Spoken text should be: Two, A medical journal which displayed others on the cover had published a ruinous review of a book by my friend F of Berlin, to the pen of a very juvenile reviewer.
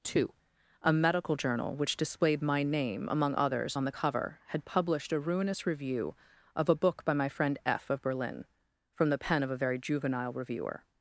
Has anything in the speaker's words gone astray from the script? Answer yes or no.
yes